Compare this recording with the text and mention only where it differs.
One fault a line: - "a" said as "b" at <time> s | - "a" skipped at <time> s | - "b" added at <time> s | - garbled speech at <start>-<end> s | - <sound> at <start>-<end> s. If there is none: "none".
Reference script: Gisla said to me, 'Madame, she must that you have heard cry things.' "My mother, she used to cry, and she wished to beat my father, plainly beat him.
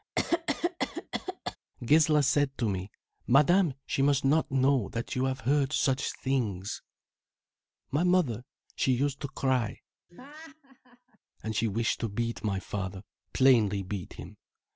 - cough at 0.2-1.6 s
- "not know" added at 4.2 s
- "cry" said as "such" at 5.7 s
- laugh at 10.1-11.2 s